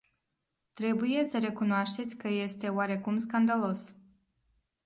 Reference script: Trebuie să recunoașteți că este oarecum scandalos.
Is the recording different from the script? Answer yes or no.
no